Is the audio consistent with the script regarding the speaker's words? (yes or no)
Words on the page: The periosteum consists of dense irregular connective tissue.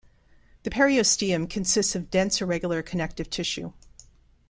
yes